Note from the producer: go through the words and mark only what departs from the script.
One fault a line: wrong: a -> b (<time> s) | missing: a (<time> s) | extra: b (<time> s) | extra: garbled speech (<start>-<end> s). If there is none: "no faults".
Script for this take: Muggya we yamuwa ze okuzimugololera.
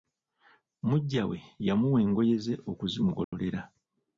extra: engoye (2.1 s)